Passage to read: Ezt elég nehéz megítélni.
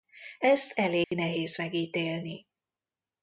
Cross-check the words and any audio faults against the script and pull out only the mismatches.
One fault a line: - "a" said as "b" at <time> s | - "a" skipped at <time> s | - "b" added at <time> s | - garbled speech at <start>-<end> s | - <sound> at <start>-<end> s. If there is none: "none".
- dropout at 1.0-1.1 s